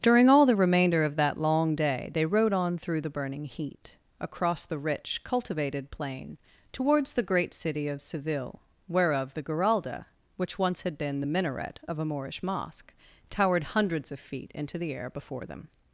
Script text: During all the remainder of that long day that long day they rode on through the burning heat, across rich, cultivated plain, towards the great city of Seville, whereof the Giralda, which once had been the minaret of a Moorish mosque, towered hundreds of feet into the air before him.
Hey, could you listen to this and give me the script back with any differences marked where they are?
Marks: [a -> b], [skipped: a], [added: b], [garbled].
During all the remainder of that long day [skipped: that long day] they rode on through the burning heat, across [added: the] rich, cultivated plain, towards the great city of Seville, whereof the Giralda, which once had been the minaret of a Moorish mosque, towered hundreds of feet into the air before [him. -> them]